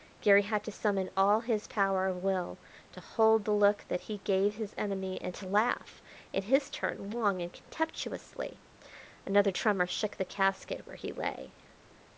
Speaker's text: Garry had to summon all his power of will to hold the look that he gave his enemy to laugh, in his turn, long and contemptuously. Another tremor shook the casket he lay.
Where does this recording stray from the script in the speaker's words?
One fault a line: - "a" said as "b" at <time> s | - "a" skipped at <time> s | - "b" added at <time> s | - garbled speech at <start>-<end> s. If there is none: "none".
- "and" added at 5.2 s
- "where" added at 10.8 s